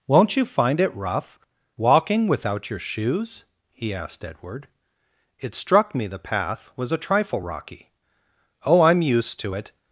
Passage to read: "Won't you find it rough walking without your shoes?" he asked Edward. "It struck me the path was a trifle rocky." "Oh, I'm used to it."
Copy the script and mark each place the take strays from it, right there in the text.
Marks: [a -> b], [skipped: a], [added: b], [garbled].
"Won't you find it rough walking without your shoes?" he asked Edward. "It struck me the path was a trifle rocky." "Oh, I'm used to it."